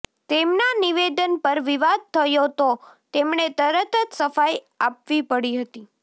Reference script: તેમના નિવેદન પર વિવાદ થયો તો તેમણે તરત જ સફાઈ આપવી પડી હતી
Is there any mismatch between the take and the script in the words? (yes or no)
no